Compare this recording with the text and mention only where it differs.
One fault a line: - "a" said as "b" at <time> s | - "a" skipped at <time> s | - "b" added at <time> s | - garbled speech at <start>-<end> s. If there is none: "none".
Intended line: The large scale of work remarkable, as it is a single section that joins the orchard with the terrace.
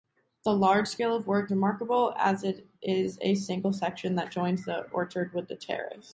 none